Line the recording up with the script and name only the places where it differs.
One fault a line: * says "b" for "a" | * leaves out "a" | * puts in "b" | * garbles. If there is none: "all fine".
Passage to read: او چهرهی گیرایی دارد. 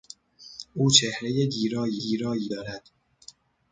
* puts in "گیرایی"